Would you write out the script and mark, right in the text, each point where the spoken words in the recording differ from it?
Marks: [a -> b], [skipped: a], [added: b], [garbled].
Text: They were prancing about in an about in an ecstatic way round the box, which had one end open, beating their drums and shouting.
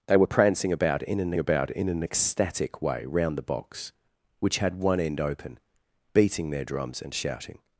They were prancing about in an about in an ecstatic way round the box, which had one end open, beating their drums and shouting.